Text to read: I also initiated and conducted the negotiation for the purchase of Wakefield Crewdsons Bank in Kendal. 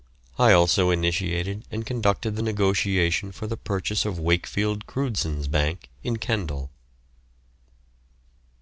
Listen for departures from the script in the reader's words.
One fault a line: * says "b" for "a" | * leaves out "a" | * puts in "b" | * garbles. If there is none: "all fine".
all fine